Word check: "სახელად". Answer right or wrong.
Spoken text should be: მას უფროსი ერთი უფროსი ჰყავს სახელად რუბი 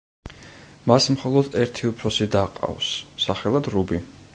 right